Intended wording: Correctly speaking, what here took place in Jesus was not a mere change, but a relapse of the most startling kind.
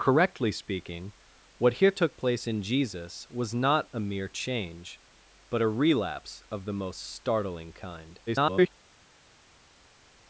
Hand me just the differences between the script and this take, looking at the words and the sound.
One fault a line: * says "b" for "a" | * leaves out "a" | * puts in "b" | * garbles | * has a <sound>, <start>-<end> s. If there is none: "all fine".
* garbles